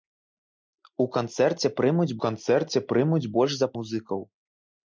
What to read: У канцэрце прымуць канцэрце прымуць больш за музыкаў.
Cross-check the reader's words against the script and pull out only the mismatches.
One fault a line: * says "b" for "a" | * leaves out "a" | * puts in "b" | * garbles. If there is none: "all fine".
all fine